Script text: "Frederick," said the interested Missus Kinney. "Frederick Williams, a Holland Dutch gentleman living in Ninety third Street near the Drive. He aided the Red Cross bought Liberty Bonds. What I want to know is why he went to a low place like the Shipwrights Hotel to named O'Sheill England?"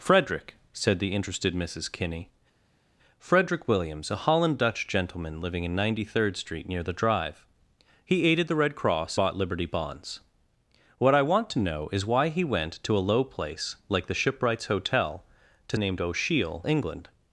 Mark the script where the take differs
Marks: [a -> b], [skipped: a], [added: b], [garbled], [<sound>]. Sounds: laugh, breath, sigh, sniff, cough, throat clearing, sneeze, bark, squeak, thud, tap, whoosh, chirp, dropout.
"Frederick," said the interested Missus Kinney. "Frederick Williams, a Holland Dutch gentleman living in Ninety third Street near the Drive. He aided the Red Cross bought Liberty Bonds. What I want to know is why he went to a low place like the Shipwrights Hotel to named O'Sheill England?"